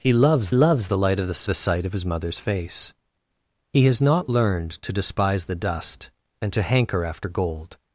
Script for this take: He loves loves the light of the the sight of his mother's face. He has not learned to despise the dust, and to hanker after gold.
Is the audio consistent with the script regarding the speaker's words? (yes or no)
yes